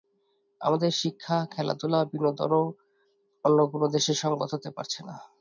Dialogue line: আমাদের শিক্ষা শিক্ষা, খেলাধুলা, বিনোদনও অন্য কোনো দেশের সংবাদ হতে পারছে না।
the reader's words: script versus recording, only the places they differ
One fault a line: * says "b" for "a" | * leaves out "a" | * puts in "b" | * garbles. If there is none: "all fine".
* leaves out "শিক্ষা"